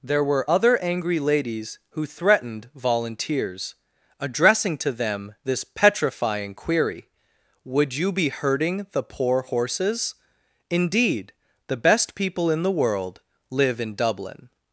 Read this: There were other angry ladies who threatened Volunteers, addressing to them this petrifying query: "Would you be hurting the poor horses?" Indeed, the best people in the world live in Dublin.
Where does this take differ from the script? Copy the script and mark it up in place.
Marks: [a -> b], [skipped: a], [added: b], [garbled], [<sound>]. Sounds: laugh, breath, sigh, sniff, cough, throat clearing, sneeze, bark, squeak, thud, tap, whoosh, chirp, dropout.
There were other angry ladies who threatened Volunteers, addressing to them this petrifying query: "Would you be hurting the poor horses?" Indeed, the best people in the world live in Dublin.